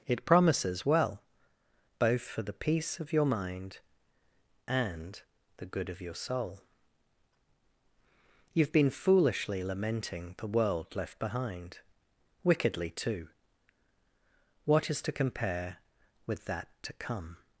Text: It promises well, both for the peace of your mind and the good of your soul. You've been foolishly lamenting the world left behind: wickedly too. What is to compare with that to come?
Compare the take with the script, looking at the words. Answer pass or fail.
pass